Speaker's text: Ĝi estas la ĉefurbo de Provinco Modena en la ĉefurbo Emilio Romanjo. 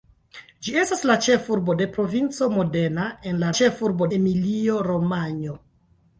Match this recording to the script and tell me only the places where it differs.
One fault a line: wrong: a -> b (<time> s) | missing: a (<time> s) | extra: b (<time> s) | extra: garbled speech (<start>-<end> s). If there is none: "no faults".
no faults